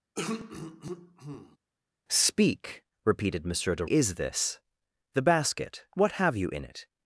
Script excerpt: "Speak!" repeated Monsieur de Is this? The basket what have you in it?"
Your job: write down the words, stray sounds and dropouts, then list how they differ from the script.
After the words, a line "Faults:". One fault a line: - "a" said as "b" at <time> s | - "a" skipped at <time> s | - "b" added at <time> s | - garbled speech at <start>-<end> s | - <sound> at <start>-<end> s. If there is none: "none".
"Speak!" repeated Monsieur de Is this? The basket what have you in it?"
Faults:
- throat clearing at 0.1-1.6 s